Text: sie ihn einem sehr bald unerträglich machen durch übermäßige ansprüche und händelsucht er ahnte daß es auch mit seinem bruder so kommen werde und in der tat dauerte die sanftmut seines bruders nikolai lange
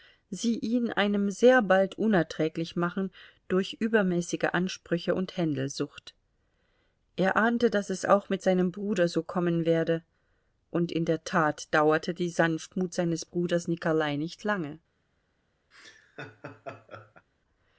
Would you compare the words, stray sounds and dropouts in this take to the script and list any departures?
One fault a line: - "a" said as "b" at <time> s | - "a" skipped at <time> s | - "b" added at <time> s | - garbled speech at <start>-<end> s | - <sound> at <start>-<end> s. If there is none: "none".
- "nicht" added at 14.2 s
- laugh at 15.7-17.3 s